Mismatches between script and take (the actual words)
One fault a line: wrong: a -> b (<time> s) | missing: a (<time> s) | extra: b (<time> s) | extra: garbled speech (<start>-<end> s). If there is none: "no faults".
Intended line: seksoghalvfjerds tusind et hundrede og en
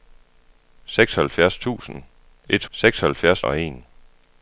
wrong: hundrede -> seksoghalvfjerds (2.7 s)